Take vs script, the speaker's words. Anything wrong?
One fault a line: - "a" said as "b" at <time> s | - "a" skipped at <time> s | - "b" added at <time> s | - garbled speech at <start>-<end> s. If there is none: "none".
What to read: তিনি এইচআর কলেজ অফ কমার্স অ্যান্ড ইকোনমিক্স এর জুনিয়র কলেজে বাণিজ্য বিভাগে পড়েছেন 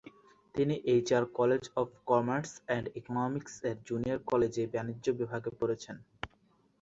none